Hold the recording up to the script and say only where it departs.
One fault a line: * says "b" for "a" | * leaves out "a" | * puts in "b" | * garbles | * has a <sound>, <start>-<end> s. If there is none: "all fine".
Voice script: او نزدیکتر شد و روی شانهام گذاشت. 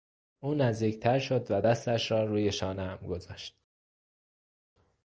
* puts in "دستش را"